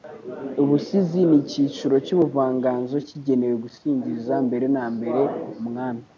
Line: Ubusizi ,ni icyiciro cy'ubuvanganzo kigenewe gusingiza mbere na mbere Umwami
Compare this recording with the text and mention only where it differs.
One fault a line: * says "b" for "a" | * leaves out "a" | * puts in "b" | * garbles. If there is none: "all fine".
all fine